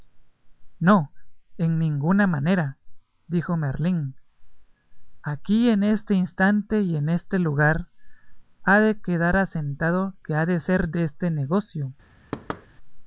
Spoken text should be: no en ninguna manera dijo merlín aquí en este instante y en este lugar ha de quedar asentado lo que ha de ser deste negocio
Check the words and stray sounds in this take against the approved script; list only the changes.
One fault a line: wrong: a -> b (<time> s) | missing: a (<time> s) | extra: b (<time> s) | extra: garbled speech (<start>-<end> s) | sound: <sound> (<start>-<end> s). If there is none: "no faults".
missing: lo (10.2 s)
sound: thud (12.3-12.7 s)